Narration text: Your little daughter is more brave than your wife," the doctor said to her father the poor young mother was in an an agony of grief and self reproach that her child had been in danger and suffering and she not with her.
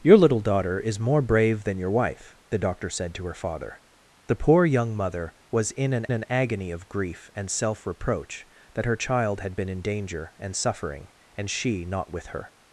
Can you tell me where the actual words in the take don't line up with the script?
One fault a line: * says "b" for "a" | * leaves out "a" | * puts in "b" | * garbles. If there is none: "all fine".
all fine